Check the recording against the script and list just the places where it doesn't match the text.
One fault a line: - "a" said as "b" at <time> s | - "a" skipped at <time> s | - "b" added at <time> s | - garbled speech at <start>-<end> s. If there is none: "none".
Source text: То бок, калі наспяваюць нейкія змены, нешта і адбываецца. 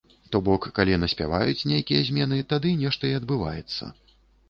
- "тады" added at 2.6 s